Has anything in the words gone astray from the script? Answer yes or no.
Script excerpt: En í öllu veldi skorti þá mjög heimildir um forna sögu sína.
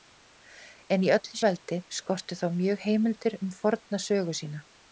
no